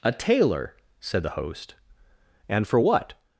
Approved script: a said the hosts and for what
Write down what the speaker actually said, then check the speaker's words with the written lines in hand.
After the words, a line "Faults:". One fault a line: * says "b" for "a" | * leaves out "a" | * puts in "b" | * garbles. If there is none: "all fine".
a tailor said the host and for what
Faults:
* puts in "tailor"
* says "host" for "hosts"